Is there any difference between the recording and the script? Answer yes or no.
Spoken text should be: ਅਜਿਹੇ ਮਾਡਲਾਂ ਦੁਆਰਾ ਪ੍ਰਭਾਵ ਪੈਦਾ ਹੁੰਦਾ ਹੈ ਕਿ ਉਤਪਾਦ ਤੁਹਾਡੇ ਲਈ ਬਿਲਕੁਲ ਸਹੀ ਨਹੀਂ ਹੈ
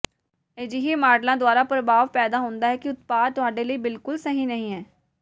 no